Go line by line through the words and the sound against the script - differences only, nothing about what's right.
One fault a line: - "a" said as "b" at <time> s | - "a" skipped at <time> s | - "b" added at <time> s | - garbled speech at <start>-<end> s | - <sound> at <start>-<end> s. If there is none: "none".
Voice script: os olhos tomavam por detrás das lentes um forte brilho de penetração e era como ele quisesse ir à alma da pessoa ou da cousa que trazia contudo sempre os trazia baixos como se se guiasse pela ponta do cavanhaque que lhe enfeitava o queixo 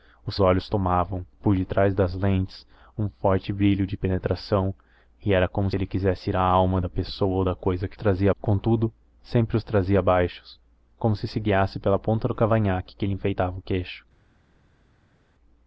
none